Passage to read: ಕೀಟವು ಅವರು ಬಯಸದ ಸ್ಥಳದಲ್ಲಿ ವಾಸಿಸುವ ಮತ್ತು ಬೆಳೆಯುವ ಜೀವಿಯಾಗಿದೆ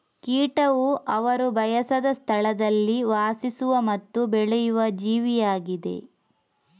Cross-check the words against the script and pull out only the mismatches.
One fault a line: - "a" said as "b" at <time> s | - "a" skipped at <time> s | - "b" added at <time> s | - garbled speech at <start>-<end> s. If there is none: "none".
none